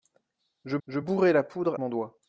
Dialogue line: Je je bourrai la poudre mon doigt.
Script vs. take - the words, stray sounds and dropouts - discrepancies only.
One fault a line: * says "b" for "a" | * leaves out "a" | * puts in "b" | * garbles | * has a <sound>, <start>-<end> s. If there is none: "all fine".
all fine